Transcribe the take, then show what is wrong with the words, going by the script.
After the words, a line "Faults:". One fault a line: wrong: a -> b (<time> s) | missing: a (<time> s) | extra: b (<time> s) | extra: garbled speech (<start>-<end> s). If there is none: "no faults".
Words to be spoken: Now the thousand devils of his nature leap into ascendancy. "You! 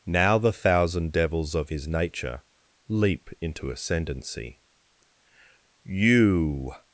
Now the thousand devils of his nature leap into ascendancy. "You!
Faults:
no faults